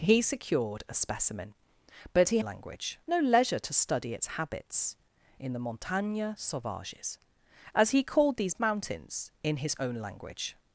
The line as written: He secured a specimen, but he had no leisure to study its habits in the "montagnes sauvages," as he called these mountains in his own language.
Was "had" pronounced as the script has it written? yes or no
no